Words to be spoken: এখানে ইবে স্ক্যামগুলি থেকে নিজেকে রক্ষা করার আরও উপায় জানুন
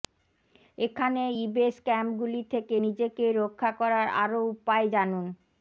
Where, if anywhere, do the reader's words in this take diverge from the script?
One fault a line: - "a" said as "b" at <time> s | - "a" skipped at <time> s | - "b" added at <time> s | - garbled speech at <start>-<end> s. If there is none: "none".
none